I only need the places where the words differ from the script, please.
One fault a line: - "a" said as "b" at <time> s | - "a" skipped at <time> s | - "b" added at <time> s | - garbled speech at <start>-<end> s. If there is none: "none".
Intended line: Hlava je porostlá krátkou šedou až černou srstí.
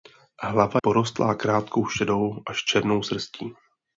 - "je" skipped at 0.8 s